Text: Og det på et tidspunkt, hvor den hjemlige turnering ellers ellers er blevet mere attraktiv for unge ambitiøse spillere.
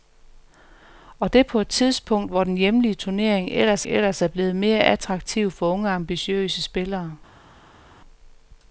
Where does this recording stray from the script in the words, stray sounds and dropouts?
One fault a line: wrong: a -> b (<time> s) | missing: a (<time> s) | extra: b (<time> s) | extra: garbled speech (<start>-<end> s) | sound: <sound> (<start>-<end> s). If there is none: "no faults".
no faults